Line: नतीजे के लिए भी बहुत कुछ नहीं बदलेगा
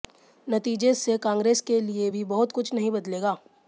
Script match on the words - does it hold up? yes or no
no